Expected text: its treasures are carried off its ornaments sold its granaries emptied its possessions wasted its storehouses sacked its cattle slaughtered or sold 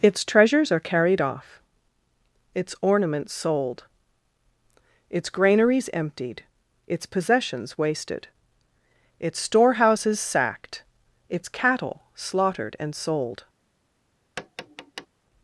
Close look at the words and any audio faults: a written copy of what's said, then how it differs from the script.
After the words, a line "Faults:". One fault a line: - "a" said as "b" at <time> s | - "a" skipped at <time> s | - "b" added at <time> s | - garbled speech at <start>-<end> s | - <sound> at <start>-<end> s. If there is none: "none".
its treasures are carried off its ornaments sold its granaries emptied its possessions wasted its storehouses sacked its cattle slaughtered and sold
Faults:
- "or" said as "and" at 12.8 s
- tap at 14.4-15.1 s